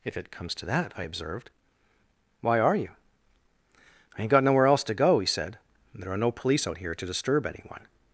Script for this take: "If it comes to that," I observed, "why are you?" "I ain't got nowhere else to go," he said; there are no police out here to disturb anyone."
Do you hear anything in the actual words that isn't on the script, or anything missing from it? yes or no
no